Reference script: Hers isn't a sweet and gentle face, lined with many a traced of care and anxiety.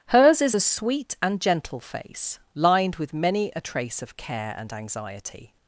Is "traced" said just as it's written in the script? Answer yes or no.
no